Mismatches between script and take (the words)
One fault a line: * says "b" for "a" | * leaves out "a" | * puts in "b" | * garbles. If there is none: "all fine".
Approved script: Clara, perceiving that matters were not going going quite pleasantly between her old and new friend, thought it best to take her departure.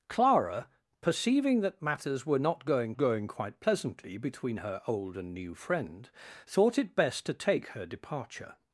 all fine